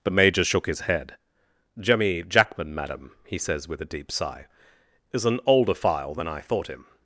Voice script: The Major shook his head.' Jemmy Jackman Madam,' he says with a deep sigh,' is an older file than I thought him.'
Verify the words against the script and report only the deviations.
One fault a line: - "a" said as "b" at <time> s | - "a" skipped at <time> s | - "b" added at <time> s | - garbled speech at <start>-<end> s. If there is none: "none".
none